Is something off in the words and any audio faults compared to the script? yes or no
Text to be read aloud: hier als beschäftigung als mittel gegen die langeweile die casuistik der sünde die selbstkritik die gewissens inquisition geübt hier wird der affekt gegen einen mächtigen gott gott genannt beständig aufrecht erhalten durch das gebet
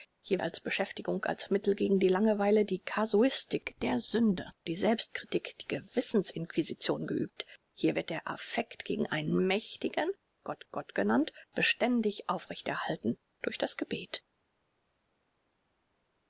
no